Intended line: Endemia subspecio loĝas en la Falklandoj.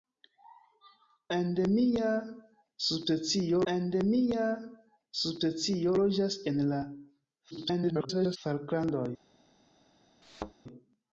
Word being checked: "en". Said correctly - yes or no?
yes